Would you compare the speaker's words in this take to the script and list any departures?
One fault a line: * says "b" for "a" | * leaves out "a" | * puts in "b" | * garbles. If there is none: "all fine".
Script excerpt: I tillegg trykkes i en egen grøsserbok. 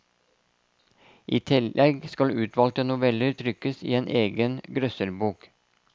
* puts in "skal utvalgte noveller"